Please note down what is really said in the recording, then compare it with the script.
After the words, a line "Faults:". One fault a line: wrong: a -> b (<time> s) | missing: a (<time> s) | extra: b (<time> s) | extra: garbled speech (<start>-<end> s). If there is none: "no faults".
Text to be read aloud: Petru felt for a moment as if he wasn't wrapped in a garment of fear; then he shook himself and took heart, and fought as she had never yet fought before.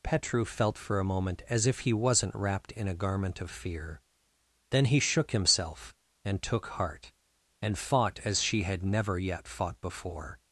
Petru felt for a moment as if he wasn't wrapped in a garment of fear; then he shook himself and took heart, and fought as she had never yet fought before.
Faults:
no faults